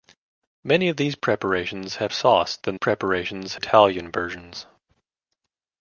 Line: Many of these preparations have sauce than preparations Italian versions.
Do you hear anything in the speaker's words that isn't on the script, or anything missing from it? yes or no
no